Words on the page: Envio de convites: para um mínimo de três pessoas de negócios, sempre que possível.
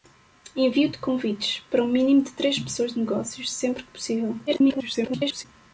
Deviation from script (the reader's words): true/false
true